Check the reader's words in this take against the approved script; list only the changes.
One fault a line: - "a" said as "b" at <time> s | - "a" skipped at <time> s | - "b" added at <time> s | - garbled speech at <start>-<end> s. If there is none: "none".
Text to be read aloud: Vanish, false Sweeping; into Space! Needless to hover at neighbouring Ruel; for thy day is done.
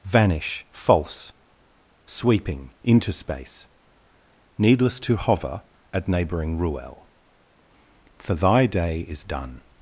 none